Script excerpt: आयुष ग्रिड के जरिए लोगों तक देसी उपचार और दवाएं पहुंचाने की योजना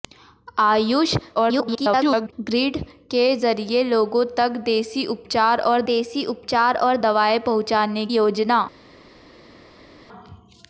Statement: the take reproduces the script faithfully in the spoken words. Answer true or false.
false